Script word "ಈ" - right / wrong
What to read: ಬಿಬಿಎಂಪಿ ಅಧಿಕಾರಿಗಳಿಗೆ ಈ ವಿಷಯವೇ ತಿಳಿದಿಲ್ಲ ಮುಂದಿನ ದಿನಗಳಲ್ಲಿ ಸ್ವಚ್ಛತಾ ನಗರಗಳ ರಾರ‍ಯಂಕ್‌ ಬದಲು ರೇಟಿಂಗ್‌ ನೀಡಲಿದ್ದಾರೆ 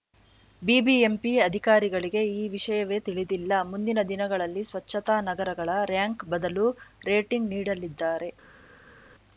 right